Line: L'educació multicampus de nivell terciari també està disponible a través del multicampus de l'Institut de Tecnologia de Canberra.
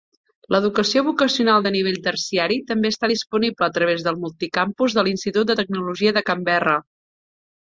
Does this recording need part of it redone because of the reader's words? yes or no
yes